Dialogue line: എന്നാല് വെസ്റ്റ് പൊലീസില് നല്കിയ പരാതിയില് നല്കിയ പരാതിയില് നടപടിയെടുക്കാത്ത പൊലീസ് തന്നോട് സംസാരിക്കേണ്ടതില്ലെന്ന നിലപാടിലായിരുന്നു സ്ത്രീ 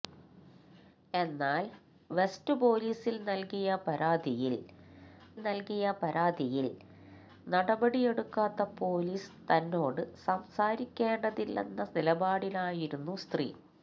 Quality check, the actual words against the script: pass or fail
pass